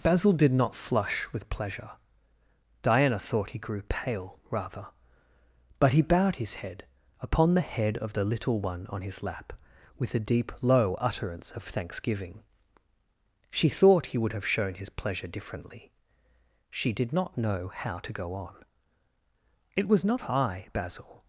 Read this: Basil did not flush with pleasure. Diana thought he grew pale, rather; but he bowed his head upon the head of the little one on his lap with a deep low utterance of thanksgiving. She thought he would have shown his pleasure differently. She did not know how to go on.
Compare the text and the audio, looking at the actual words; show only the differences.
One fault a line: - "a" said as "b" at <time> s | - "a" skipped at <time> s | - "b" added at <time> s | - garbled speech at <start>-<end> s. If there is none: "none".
- "It was not I Basil" added at 19.8 s